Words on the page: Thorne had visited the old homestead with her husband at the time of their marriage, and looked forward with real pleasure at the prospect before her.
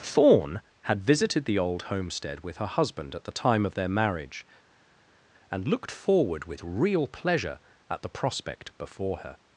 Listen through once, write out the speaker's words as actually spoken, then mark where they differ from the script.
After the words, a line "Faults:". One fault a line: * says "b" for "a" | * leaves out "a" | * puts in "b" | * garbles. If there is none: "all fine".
Thorne had visited the old homestead with her husband at the time of their marriage, and looked forward with real pleasure at the prospect before her.
Faults:
all fine